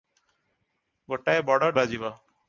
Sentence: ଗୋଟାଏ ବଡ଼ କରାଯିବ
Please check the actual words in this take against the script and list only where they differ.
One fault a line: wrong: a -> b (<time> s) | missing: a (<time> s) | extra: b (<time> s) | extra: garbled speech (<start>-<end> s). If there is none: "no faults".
no faults